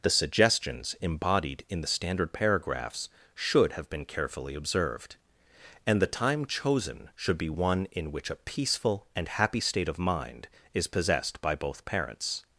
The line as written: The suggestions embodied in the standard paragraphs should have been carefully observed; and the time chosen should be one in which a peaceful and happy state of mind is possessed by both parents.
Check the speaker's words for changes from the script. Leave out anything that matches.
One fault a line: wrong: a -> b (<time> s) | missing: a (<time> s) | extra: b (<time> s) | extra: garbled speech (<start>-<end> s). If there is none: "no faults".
no faults